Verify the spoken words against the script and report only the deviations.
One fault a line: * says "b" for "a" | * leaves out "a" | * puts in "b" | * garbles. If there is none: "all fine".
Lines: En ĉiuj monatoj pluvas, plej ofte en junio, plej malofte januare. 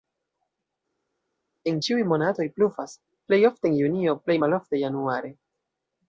all fine